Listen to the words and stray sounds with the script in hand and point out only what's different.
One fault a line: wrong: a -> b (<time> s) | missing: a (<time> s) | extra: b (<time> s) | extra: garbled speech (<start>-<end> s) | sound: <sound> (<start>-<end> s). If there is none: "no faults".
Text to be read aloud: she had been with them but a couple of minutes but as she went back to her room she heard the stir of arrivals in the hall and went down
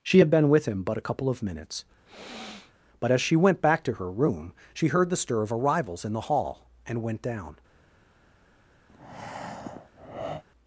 wrong: them -> him (0.6 s)
sound: sniff (2.1-2.7 s)
sound: breath (8.9-10.4 s)